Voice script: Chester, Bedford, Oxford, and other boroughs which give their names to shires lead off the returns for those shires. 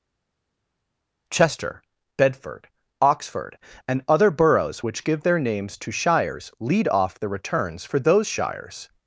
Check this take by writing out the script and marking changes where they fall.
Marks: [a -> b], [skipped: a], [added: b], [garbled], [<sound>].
Chester, Bedford, Oxford, and other boroughs which give their names to shires lead off the returns for those shires.